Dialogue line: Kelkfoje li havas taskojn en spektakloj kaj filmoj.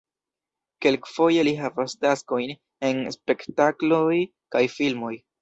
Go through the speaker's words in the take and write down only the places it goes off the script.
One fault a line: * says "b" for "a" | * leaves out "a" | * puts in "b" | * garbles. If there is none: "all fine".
all fine